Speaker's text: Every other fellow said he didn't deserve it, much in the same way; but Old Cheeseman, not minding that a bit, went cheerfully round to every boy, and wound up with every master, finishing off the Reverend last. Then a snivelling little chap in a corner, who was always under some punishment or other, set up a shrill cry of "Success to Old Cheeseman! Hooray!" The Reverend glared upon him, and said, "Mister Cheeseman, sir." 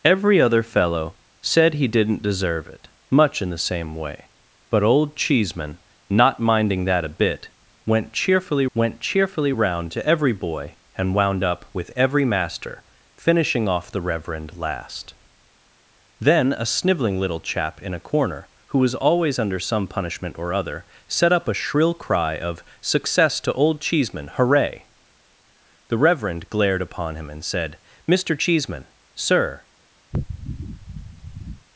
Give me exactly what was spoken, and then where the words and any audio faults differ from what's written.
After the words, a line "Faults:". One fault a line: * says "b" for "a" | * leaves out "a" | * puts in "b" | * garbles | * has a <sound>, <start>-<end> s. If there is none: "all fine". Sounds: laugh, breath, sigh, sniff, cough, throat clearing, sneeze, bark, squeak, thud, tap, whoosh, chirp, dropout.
Every other fellow said he didn't deserve it, much in the same way; but Old Cheeseman, not minding that a bit, went cheerfully went cheerfully round to every boy, and wound up with every master, finishing off the Reverend last. Then a snivelling little chap in a corner, who was always under some punishment or other, set up a shrill cry of "Success to Old Cheeseman! Hooray!" The Reverend glared upon him, and said, "Mister Cheeseman, sir."
Faults:
* puts in "went cheerfully"
* has a sniff, 30.1-31.7 s